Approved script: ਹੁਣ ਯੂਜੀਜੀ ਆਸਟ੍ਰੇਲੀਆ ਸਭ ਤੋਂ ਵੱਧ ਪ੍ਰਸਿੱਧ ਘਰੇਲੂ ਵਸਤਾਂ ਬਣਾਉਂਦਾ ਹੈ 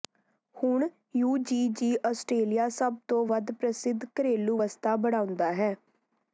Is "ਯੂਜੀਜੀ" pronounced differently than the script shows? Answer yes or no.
no